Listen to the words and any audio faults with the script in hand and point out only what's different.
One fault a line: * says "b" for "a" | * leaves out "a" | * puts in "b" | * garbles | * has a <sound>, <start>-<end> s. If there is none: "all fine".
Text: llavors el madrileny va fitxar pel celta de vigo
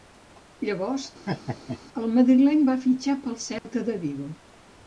* has a laugh, 1.3-1.8 s
* has a dropout, 3.6-3.6 s